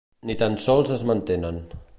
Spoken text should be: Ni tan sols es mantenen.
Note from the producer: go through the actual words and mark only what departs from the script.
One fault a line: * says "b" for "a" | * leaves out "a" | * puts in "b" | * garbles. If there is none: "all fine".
all fine